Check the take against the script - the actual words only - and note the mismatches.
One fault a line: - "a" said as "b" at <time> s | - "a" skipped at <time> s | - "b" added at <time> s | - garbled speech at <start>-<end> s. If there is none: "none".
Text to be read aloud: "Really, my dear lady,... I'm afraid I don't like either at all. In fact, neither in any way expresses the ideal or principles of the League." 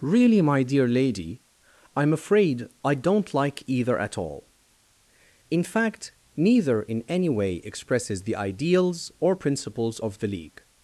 - "ideal" said as "ideals" at 8.3 s